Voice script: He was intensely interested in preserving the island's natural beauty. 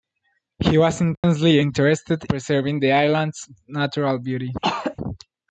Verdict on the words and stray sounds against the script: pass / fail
fail